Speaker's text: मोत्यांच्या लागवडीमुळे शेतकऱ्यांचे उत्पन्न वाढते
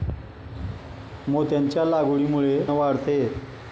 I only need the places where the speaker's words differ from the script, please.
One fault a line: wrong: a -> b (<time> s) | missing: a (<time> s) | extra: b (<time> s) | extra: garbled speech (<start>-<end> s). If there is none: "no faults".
missing: शेतकऱ्यांचे उत्पन्न (2.6 s)